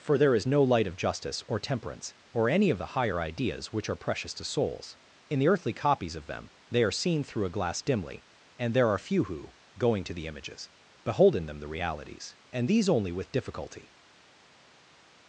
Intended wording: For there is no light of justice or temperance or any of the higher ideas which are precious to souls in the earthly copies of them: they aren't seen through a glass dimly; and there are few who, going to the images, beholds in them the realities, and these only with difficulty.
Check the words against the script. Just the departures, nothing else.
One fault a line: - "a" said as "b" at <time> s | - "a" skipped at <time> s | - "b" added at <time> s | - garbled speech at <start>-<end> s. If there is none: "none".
- "aren't" said as "are" at 6.8 s
- "beholds" said as "behold" at 11.0 s